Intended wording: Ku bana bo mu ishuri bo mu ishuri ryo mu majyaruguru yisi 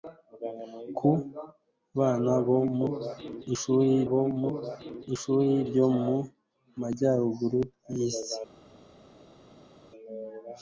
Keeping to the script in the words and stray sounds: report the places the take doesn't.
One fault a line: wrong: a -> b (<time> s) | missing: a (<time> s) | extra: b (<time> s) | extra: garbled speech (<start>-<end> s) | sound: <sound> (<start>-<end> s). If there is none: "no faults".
no faults